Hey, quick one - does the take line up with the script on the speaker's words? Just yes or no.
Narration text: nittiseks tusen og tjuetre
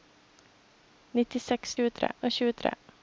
no